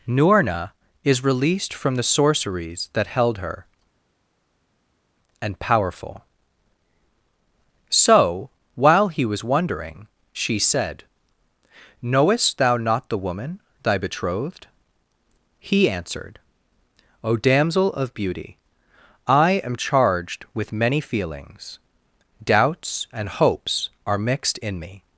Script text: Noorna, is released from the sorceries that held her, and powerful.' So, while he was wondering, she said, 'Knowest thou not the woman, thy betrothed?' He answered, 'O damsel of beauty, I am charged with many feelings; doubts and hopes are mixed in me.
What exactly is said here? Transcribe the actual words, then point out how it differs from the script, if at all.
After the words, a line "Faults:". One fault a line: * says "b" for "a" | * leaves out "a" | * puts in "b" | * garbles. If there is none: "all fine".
Noorna, is released from the sorceries that held her, and powerful.' So, while he was wondering, she said, 'Knowest thou not the woman, thy betrothed?' He answered, 'O damsel of beauty, I am charged with many feelings; doubts and hopes are mixed in me.
Faults:
all fine